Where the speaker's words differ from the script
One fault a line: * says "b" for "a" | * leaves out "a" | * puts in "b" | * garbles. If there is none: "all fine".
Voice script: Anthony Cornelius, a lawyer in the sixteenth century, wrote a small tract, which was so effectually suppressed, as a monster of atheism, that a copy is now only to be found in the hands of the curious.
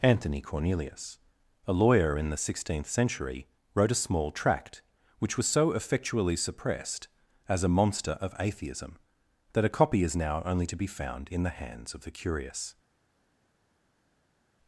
all fine